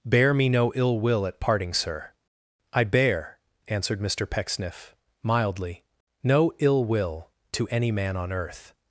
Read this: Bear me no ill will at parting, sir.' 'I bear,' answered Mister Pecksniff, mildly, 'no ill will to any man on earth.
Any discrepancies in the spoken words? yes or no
no